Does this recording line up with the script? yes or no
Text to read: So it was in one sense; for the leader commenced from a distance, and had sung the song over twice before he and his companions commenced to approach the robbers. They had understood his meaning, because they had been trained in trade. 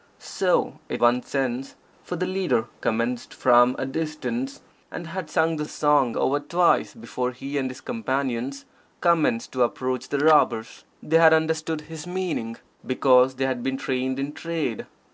no